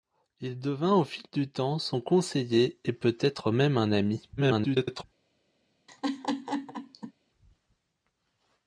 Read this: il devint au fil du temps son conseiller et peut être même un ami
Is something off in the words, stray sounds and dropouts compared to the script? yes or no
yes